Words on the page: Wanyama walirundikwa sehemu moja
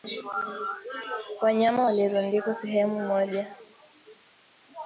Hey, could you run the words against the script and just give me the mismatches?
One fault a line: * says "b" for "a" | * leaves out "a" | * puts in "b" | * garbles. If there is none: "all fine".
all fine